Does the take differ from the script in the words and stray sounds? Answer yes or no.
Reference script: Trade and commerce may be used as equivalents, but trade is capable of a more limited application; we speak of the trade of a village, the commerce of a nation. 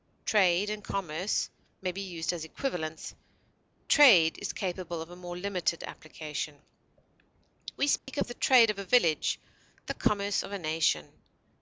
yes